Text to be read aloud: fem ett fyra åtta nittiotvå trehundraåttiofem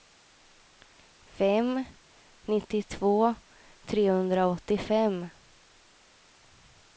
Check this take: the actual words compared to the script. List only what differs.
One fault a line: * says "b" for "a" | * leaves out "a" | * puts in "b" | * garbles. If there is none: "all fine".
* leaves out "ett fyra åtta"